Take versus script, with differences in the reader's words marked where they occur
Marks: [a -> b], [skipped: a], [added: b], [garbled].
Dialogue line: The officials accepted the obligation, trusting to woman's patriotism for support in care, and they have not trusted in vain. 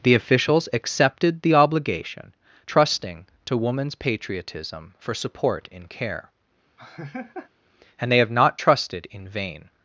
The officials accepted the obligation, trusting to woman's patriotism for support in care, and they have not trusted in vain.